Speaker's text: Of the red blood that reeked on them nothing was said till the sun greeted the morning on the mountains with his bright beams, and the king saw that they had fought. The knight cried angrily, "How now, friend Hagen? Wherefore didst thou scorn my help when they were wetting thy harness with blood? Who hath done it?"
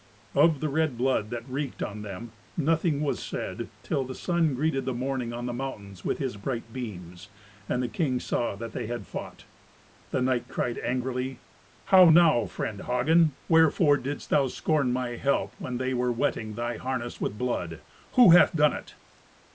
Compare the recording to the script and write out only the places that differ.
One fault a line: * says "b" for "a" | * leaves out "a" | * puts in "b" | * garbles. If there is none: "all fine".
all fine